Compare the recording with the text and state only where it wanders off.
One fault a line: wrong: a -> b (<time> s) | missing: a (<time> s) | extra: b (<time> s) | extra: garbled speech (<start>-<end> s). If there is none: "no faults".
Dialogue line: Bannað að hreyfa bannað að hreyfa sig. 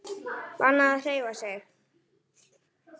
missing: bannað að hreyfa (1.3 s)